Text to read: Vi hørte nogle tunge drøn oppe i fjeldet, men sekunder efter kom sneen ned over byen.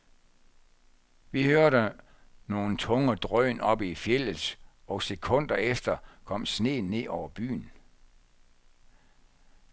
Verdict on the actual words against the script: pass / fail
fail